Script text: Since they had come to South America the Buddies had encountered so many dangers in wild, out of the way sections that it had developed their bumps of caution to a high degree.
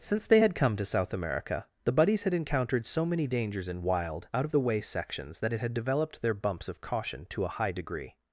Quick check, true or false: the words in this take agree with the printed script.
true